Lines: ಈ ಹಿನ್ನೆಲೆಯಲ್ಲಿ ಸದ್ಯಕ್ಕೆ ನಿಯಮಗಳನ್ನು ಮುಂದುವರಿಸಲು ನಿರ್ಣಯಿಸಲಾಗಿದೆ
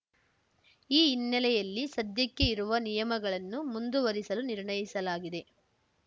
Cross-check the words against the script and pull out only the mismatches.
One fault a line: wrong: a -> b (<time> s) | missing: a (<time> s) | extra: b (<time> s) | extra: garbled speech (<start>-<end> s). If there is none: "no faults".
extra: ಇರುವ (2.5 s)